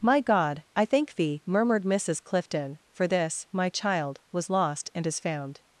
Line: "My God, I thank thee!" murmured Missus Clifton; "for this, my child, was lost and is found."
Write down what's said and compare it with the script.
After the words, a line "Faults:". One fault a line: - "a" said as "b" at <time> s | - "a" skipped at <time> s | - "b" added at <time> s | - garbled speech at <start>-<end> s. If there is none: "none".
"My God, I thank thee!" murmured Missus Clifton; "for this, my child, was lost and is found."
Faults:
none